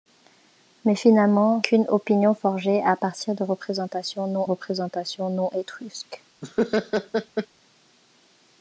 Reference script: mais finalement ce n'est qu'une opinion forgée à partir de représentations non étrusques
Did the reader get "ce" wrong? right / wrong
wrong